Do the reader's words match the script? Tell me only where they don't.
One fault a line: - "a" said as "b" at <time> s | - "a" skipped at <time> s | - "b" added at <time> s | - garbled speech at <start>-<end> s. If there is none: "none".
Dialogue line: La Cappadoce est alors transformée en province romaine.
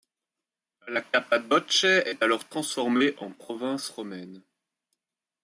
none